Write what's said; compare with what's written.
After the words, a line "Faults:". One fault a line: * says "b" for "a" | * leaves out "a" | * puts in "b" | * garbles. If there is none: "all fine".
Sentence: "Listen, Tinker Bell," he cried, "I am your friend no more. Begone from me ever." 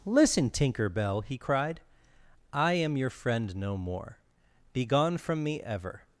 "Listen, Tinker Bell," he cried, "I am your friend no more. Begone from me ever."
Faults:
all fine